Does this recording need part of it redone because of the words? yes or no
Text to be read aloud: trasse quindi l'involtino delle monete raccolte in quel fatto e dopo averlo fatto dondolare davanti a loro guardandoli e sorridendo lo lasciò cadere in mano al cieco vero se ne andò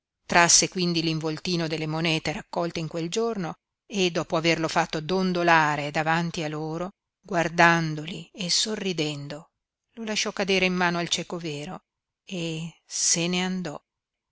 yes